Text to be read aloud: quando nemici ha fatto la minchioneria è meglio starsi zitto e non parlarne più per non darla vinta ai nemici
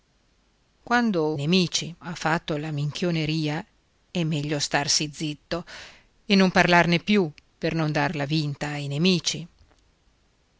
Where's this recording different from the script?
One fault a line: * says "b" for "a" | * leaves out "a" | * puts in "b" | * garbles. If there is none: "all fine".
all fine